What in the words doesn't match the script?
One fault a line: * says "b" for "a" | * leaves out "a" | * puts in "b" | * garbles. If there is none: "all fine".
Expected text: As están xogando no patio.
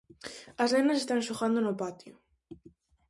* puts in "nenas"